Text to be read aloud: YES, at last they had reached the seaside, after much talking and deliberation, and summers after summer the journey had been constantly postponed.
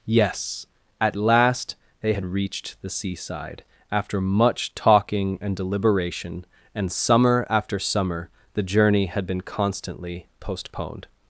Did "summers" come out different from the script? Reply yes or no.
yes